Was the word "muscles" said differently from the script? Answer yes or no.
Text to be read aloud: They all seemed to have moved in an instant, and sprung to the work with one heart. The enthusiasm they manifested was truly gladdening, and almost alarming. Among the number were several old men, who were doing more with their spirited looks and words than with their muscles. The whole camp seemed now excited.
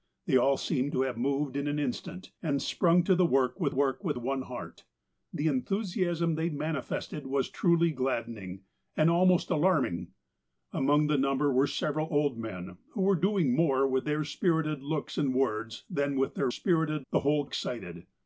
yes